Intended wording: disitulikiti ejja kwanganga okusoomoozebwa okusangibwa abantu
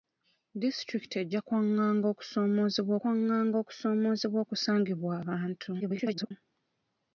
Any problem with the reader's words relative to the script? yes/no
yes